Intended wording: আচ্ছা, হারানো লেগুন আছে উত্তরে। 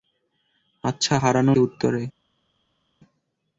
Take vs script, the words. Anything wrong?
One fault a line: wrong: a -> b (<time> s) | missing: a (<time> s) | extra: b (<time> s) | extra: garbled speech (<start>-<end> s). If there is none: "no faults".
missing: লেগুন আছে (1.5 s)